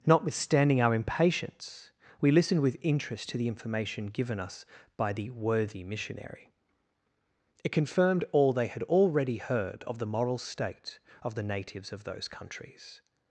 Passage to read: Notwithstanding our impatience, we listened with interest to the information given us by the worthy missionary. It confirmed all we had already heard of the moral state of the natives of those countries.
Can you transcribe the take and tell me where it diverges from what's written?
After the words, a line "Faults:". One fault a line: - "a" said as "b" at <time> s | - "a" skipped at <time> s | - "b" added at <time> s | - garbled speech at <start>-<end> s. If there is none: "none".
Notwithstanding our impatience, we listened with interest to the information given us by the worthy missionary. It confirmed all they had already heard of the moral state of the natives of those countries.
Faults:
- "we" said as "they" at 8.5 s